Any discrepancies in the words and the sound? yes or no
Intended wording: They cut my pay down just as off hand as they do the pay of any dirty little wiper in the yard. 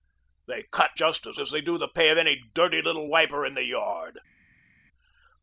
yes